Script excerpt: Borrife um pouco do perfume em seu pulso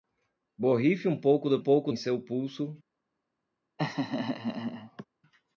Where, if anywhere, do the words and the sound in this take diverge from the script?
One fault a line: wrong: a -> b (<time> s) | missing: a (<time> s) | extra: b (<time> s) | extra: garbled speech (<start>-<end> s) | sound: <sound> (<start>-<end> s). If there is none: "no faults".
wrong: perfume -> pouco (1.6 s)
sound: laugh (3.8-5.0 s)